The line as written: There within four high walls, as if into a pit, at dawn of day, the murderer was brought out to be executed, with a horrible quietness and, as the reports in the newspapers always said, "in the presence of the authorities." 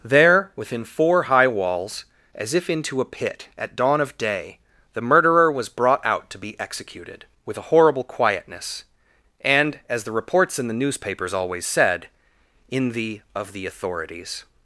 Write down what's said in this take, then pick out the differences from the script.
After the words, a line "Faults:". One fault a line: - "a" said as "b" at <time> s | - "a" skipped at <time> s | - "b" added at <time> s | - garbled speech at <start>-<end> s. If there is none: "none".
There within four high walls, as if into a pit, at dawn of day, the murderer was brought out to be executed, with a horrible quietness and, as the reports in the newspapers always said, "in the of the authorities."
Faults:
- "presence" skipped at 13.2 s